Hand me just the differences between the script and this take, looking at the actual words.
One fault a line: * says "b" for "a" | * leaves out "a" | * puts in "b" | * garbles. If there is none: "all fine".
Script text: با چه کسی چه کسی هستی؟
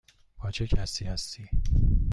* leaves out "چه کسی"